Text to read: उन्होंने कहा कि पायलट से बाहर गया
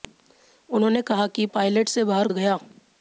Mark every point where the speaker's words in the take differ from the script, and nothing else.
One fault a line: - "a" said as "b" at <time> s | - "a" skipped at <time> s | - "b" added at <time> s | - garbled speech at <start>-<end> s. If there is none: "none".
none